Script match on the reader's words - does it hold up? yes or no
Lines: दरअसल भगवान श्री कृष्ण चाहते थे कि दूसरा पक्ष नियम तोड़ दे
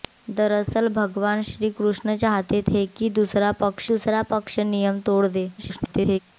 no